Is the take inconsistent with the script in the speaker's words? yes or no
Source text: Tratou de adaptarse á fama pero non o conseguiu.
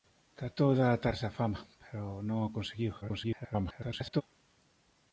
yes